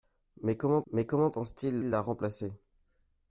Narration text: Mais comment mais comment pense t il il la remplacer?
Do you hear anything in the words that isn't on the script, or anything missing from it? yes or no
no